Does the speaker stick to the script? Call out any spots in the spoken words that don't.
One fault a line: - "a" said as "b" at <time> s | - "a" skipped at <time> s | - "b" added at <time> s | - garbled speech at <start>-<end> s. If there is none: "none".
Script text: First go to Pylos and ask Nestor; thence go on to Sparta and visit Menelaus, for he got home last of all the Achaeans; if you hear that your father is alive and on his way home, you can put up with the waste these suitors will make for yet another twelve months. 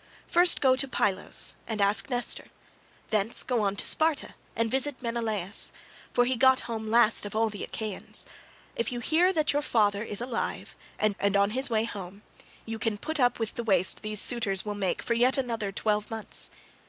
- "and" added at 11.2 s